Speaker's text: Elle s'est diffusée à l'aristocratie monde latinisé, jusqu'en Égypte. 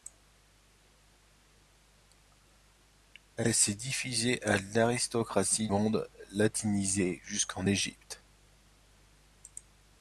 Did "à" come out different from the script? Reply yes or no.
no